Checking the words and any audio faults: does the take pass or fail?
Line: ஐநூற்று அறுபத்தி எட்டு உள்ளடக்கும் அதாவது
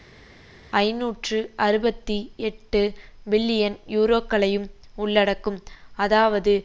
fail